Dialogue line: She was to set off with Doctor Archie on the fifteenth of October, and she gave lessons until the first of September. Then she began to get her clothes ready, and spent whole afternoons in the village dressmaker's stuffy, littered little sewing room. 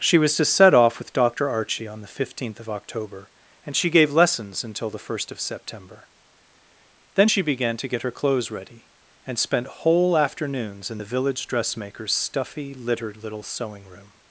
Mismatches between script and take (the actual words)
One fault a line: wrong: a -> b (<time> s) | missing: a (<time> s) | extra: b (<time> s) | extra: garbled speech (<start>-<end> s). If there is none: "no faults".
no faults